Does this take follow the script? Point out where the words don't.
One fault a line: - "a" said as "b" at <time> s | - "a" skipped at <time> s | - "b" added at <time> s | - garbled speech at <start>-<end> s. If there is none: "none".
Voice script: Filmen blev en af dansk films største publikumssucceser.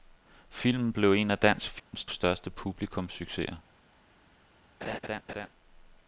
none